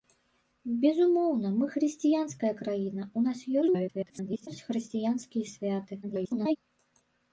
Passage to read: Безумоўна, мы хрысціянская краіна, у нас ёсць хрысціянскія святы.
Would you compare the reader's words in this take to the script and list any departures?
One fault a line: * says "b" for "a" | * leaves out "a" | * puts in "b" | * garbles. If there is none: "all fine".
* garbles
* garbles